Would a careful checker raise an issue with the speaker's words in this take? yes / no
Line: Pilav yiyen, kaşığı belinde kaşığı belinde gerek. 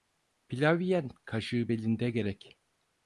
yes